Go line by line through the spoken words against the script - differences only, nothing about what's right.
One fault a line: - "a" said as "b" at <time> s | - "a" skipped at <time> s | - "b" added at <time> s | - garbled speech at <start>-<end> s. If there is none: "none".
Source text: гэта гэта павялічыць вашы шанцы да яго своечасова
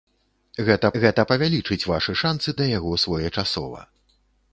none